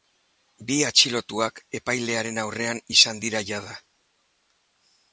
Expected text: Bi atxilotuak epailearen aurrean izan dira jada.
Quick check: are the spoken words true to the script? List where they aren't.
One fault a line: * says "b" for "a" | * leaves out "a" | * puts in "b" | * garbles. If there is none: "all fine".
all fine